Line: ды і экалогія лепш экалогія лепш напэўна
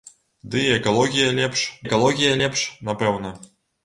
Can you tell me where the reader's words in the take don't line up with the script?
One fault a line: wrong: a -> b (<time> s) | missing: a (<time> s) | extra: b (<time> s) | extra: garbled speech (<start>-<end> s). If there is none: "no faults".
no faults